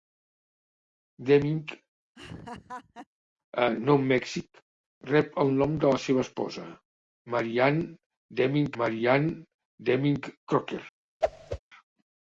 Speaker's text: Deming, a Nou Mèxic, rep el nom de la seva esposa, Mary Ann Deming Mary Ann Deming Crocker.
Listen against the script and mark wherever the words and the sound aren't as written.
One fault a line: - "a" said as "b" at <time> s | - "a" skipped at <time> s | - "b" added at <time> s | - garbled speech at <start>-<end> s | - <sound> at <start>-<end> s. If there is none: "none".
- laugh at 2.2-3.1 s
- whoosh at 11.2-11.6 s